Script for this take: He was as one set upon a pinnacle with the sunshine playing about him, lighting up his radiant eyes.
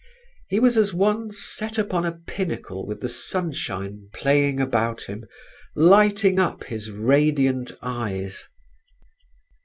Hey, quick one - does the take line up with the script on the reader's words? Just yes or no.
yes